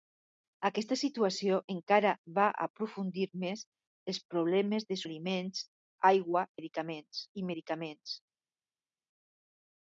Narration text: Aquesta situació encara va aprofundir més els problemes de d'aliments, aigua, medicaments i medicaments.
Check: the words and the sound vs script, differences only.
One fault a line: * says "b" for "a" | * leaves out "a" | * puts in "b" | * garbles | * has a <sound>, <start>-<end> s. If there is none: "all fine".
all fine